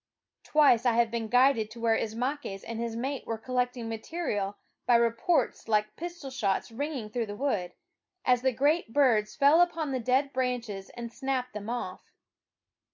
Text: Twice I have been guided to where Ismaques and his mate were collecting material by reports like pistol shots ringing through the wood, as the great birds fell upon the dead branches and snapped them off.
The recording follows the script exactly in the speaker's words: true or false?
true